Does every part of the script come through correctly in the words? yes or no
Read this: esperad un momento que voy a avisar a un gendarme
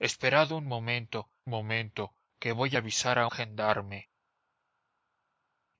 no